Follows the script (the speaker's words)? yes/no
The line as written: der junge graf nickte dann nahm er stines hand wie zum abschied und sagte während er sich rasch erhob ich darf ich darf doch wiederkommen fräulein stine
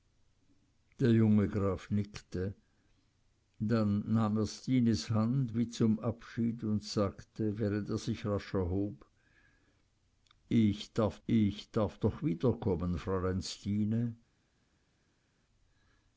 yes